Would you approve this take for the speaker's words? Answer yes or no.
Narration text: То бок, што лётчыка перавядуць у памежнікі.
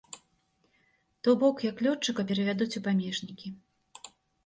no